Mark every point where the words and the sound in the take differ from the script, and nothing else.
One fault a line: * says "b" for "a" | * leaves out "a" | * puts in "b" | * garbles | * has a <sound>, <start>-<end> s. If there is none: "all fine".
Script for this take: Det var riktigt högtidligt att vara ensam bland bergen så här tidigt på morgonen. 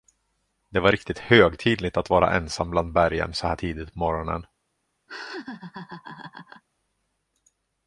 * has a laugh, 5.1-6.6 s